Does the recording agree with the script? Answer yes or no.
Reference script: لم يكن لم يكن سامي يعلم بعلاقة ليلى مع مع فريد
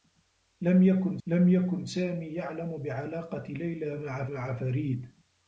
yes